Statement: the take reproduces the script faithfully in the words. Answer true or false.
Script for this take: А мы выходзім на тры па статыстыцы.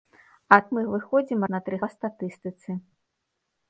true